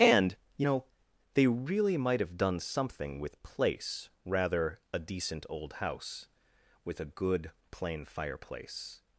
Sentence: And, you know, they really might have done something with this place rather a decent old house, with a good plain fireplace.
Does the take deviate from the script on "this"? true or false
true